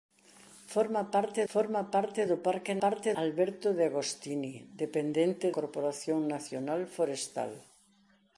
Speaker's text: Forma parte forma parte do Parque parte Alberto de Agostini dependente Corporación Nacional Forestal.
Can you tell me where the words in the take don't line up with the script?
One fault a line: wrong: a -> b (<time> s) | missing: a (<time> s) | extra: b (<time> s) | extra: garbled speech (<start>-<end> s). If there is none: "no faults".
no faults